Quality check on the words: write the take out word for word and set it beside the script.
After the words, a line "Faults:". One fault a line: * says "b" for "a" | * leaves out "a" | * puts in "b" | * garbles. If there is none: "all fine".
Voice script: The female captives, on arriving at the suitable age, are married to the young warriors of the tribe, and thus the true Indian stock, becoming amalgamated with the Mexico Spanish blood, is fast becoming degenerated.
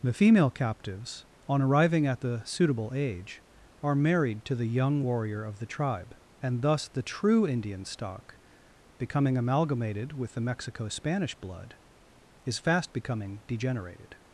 The female captives, on arriving at the suitable age, are married to the young warrior of the tribe, and thus the true Indian stock, becoming amalgamated with the Mexico Spanish blood, is fast becoming degenerated.
Faults:
* says "warrior" for "warriors"